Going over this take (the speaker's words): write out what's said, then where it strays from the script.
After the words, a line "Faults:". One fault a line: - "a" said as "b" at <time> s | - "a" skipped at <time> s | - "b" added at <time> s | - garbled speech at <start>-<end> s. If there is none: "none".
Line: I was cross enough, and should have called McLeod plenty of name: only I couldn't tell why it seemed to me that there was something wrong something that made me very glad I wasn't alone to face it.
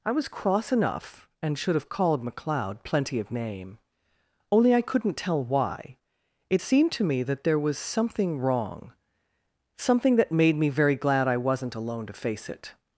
I was cross enough, and should have called McLeod plenty of name: only I couldn't tell why it seemed to me that there was something wrong something that made me very glad I wasn't alone to face it.
Faults:
none